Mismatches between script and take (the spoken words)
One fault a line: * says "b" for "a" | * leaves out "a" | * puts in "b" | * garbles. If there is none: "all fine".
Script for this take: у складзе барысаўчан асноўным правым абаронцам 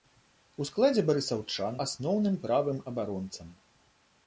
all fine